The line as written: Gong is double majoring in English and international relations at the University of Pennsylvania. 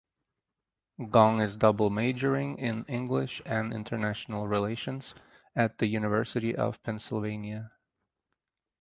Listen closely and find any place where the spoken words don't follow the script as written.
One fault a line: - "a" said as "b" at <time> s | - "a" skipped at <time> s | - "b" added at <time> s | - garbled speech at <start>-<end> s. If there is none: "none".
none